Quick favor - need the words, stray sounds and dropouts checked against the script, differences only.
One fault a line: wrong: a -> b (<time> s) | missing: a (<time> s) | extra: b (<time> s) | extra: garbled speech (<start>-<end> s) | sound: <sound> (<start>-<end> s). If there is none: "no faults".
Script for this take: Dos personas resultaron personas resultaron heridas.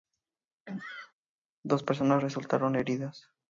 sound: sneeze (0.7-1.1 s)
missing: personas resultaron (2.8 s)